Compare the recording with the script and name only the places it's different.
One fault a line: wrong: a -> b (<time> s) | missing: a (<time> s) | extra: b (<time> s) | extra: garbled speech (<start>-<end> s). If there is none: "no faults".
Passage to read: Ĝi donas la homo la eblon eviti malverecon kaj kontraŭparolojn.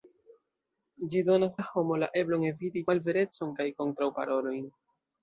no faults